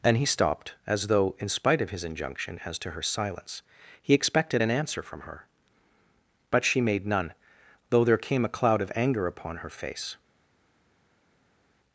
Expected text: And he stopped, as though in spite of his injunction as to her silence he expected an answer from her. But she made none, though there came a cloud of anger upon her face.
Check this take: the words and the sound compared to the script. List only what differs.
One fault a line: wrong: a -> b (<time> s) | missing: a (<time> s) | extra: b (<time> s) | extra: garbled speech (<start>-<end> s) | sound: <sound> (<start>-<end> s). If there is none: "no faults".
no faults